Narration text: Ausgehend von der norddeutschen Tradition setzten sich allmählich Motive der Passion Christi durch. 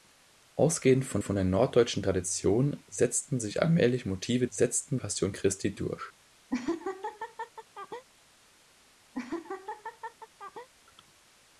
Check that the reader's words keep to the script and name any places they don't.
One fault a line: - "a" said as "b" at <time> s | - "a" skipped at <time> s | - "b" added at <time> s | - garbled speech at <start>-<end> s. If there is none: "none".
- "von" added at 1.2 s
- "der" said as "setzten" at 4.5 s